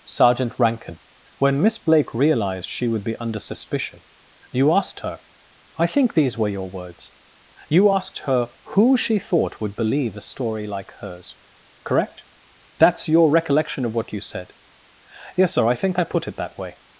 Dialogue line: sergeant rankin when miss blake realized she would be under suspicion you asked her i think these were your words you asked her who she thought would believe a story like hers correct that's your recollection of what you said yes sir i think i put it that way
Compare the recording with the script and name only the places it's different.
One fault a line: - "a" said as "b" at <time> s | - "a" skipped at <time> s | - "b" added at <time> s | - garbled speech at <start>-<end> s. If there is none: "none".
none